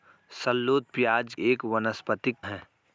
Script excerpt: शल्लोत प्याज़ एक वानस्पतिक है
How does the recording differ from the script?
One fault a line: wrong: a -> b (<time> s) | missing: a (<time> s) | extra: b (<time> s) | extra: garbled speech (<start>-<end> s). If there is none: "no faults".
no faults